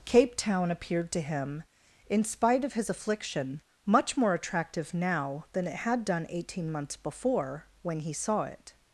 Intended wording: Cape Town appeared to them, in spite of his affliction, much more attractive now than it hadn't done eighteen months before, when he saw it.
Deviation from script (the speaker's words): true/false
true